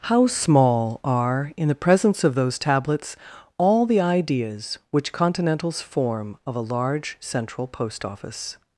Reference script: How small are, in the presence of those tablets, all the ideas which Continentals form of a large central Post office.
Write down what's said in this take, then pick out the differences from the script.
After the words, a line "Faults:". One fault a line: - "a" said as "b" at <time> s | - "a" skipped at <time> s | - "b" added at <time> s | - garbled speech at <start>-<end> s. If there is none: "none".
How small are, in the presence of those tablets, all the ideas which Continentals form of a large central Post office.
Faults:
none